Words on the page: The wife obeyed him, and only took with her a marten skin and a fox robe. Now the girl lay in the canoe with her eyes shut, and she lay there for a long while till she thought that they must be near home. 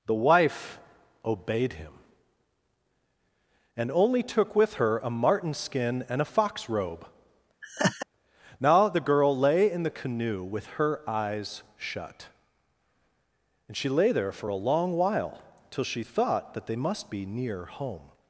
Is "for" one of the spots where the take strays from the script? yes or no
no